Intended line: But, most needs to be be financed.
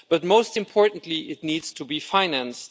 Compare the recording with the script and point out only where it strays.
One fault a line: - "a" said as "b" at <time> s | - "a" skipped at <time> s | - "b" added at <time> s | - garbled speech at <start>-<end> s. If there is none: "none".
- "importantly it" added at 0.5 s
- "be" skipped at 2.0 s